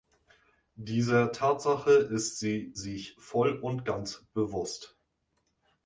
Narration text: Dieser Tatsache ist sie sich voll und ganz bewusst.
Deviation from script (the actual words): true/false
false